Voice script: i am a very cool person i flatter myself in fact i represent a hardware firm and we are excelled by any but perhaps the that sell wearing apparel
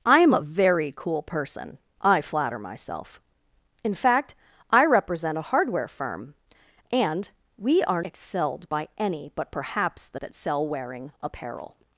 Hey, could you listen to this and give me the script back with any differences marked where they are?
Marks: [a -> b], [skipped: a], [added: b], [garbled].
i am a very cool person i flatter myself in fact i represent a hardware firm and we are excelled by any but perhaps the that sell wearing apparel